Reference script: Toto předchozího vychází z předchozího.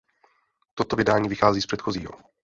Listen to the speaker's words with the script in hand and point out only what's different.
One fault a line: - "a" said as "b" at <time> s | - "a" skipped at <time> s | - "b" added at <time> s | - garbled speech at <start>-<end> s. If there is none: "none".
- "předchozího" said as "vydání" at 0.9 s